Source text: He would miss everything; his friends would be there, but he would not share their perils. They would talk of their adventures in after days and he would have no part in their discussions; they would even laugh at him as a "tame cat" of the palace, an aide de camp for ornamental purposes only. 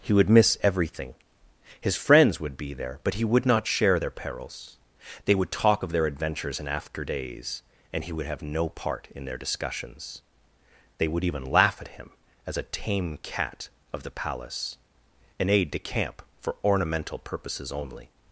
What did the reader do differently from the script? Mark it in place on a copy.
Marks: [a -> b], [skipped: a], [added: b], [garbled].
He would miss everything; his friends would be there, but he would not share their perils. They would talk of their adventures in after days and he would have no part in their discussions; they would even laugh at him as a "tame cat" of the palace, an aide de camp for ornamental purposes only.